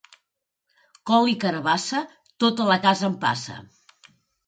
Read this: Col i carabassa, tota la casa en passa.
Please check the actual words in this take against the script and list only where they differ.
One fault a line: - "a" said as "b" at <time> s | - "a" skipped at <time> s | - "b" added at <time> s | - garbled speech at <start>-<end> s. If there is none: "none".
none